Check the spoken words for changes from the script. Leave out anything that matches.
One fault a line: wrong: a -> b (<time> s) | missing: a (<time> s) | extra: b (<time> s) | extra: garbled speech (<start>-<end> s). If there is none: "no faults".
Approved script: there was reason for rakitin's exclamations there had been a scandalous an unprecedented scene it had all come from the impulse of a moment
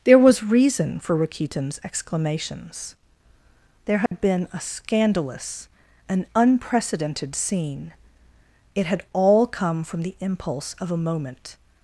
no faults